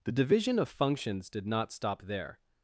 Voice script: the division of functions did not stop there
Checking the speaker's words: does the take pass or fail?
pass